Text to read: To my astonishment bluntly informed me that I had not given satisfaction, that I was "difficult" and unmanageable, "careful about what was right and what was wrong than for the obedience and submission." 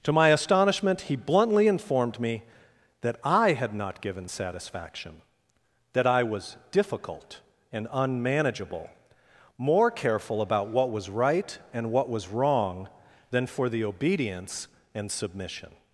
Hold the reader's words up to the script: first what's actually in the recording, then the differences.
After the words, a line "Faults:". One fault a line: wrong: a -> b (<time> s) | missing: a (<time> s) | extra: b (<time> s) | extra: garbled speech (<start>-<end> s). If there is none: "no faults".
To my astonishment he bluntly informed me that I had not given satisfaction, that I was "difficult" and unmanageable, "more careful about what was right and what was wrong than for the obedience and submission."
Faults:
extra: he (1.0 s)
extra: more (9.6 s)